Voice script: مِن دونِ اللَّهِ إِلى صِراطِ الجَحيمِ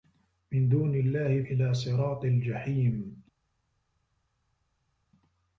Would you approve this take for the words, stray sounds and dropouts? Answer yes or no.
yes